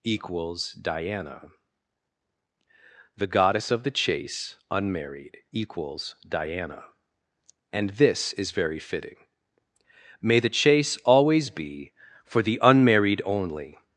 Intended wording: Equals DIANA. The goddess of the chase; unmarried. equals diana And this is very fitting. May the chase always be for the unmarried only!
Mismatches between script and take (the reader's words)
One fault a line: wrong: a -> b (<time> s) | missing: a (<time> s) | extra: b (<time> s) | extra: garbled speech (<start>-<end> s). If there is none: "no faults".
no faults